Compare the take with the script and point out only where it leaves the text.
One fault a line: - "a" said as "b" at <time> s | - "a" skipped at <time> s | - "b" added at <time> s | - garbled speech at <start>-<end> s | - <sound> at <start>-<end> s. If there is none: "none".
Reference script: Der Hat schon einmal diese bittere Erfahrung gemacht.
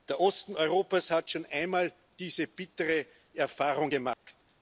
- "Osten Europas" added at 0.2 s
- dropout at 4.1-4.3 s